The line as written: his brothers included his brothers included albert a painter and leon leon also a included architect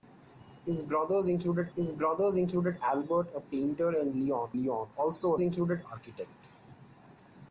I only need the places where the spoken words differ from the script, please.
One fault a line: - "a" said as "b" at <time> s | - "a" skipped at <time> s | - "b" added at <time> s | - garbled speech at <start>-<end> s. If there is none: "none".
none